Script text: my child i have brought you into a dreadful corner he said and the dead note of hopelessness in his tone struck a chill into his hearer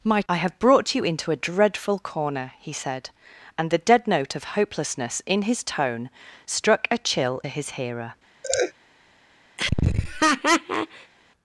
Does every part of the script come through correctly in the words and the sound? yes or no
no